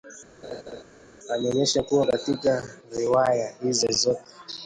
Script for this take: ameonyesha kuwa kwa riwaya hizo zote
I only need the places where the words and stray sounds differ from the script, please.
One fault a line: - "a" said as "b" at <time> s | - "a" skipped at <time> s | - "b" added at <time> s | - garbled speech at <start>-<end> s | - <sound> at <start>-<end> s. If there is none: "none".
- laugh at 0.4-0.8 s
- "kwa" said as "katika" at 2.0 s